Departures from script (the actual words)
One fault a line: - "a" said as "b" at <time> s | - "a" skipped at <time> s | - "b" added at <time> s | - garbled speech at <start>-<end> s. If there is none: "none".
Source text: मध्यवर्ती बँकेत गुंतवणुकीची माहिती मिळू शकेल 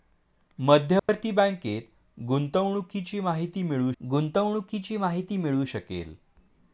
- "गुंतवणुकीची माहिती मिळू" added at 4.0 s